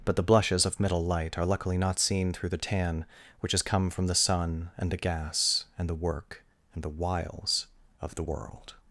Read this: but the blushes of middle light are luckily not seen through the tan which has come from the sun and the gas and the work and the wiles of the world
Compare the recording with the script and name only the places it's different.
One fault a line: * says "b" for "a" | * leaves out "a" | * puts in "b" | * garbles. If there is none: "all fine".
all fine